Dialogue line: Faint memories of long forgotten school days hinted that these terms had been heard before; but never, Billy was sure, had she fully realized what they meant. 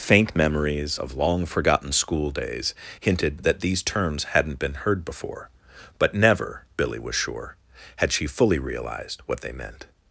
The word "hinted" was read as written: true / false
true